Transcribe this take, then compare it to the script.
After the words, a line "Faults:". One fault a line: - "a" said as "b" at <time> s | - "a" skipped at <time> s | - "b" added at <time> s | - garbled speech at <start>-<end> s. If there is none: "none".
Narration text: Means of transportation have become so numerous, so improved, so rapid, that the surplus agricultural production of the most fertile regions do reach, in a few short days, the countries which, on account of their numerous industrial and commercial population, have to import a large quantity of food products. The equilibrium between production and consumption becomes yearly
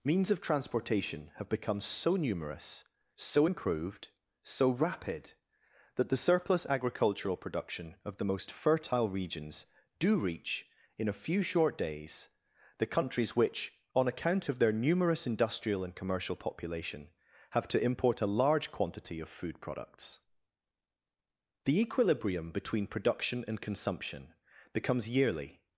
Means of transportation have become so numerous, so improved, so rapid, that the surplus agricultural production of the most fertile regions do reach, in a few short days, the countries which, on account of their numerous industrial and commercial population, have to import a large quantity of food products. The equilibrium between production and consumption becomes yearly
Faults:
none